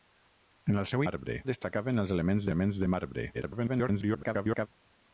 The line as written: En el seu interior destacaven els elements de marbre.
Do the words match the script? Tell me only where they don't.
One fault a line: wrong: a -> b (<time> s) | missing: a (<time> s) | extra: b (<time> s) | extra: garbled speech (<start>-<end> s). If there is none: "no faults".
wrong: interior -> marbre (1.1 s)
extra: elements (2.5 s)
extra: garbled speech (3.3-4.7 s)